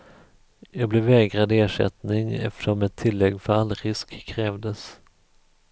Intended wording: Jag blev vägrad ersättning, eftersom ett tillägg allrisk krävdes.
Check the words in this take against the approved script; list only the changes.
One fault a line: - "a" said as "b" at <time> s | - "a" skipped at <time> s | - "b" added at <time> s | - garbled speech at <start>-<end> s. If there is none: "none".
- "för" added at 3.4 s